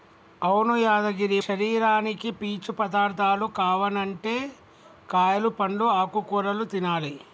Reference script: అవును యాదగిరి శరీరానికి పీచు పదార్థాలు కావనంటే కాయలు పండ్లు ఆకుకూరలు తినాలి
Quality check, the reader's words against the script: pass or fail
pass